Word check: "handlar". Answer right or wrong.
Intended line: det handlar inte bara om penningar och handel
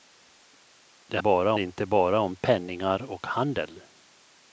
wrong